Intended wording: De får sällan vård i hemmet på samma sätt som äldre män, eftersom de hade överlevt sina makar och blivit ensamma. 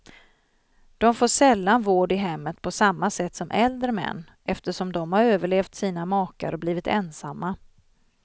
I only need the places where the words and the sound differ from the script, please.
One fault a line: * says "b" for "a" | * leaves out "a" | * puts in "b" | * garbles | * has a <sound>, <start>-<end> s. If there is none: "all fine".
* says "har" for "hade"